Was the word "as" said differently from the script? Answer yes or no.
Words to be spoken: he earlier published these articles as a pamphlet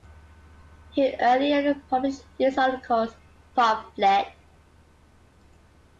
yes